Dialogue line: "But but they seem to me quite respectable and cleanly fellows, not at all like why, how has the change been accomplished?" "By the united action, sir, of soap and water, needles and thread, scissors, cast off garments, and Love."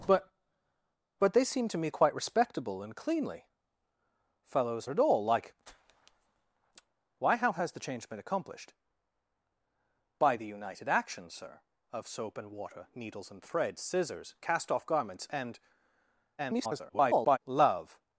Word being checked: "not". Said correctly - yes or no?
no